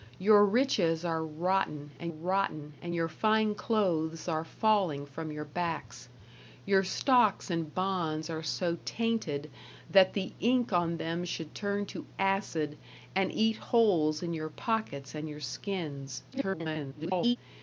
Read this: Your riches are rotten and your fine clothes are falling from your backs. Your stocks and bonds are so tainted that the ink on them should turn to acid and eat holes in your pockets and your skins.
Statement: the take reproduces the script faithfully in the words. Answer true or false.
false